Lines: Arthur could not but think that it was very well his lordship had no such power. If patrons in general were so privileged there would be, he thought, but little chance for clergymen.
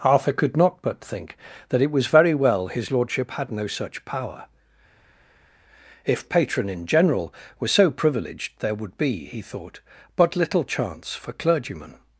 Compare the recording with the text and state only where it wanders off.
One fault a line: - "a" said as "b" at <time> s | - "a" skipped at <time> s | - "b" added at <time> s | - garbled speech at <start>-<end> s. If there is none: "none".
- "patrons" said as "patron" at 6.3 s